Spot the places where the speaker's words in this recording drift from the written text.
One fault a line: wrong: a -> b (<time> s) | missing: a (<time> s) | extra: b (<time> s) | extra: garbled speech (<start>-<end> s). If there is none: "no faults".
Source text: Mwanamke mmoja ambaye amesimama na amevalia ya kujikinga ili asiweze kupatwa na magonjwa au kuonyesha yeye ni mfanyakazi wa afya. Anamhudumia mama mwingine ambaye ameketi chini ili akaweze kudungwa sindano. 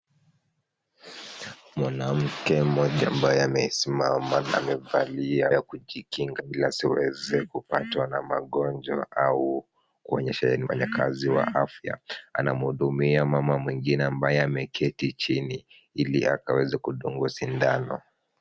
no faults